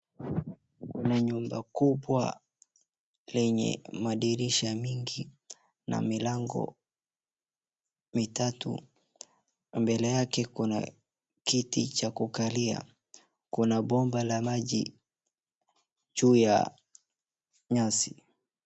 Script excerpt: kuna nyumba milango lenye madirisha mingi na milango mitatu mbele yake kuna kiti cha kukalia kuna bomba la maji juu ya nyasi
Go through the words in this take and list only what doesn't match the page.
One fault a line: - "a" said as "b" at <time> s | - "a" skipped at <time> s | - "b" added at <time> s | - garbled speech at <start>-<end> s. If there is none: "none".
- "milango" said as "kubwa" at 1.6 s